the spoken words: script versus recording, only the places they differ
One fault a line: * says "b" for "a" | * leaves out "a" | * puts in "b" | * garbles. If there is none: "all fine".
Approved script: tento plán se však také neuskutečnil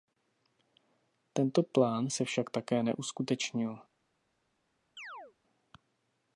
all fine